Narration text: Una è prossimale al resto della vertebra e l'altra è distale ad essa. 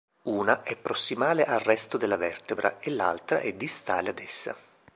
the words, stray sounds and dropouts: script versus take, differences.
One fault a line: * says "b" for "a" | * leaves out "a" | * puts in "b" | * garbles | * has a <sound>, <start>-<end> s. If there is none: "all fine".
all fine